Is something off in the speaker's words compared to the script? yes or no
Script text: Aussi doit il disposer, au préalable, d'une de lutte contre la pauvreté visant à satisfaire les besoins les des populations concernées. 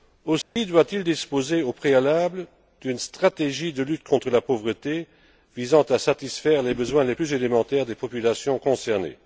yes